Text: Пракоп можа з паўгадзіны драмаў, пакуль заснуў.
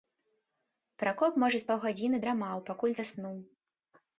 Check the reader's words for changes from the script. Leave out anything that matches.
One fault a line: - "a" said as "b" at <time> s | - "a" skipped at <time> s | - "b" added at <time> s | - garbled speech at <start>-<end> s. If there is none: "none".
none